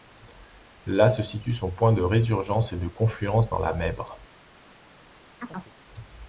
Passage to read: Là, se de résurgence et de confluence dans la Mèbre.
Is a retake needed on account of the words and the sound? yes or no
yes